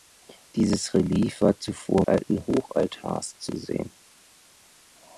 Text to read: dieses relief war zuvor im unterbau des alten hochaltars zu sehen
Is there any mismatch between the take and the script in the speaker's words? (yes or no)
yes